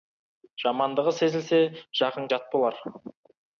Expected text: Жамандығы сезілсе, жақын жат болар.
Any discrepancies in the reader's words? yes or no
no